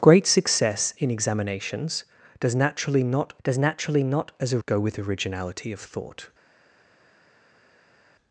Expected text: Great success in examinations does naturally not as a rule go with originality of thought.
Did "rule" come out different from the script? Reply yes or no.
yes